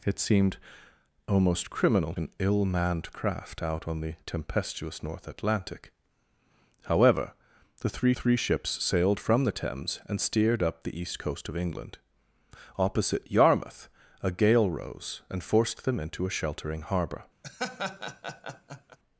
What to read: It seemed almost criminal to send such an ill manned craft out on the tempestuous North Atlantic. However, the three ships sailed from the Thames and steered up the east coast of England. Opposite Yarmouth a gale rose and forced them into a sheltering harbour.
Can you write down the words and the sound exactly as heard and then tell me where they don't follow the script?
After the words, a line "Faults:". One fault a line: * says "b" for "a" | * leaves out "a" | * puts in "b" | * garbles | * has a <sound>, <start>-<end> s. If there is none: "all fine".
It seemed almost criminal an ill manned craft out on the tempestuous North Atlantic. However, the three three ships sailed from the Thames and steered up the east coast of England. Opposite Yarmouth a gale rose and forced them into a sheltering harbour.
Faults:
* leaves out "to send such"
* puts in "three"
* has a laugh, 17.4-19.0 s